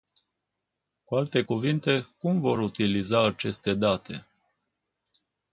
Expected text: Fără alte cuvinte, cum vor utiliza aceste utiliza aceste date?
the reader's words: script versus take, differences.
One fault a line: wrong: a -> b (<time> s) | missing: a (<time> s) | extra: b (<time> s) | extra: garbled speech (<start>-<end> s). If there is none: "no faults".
wrong: Fără -> Cu (1.0 s)
missing: utiliza aceste (3.7 s)